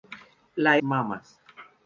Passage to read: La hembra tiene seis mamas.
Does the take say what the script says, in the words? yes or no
no